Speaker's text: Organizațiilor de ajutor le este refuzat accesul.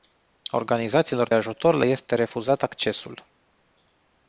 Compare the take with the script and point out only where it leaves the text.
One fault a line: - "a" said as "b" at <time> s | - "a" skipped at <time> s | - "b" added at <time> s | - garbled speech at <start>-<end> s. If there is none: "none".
- "de" skipped at 1.3 s